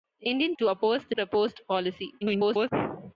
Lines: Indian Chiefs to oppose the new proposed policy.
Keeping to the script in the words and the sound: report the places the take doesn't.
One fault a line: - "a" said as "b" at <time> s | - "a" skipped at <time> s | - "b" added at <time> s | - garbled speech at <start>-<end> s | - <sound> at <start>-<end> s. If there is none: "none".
- "Chiefs" skipped at 0.6 s
- "new" skipped at 1.1 s
- garbled speech at 2.2-2.7 s